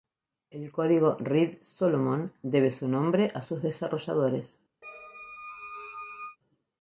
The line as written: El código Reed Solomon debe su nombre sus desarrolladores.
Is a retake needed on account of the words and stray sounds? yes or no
yes